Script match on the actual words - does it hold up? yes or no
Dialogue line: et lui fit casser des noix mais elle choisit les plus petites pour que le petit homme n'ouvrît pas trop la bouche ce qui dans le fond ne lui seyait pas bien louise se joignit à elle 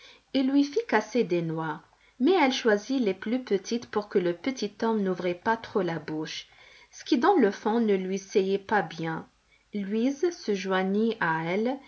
yes